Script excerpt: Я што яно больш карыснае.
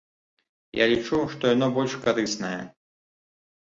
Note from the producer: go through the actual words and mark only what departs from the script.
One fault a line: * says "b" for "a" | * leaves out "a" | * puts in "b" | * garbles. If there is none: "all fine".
* puts in "лічу"